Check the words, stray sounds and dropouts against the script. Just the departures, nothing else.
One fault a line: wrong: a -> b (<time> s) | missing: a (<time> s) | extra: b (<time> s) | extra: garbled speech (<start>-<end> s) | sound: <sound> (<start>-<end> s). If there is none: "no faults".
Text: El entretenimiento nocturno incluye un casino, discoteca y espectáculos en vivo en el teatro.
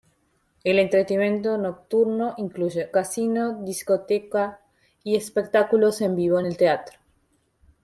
missing: un (2.9 s)